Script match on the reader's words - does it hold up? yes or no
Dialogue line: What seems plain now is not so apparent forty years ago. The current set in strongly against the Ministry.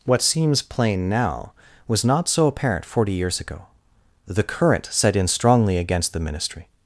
no